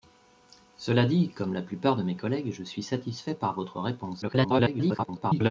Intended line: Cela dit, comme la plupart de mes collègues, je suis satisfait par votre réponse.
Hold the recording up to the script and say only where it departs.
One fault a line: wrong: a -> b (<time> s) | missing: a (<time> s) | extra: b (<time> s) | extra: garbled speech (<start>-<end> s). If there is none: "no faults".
extra: garbled speech (4.2-5.5 s)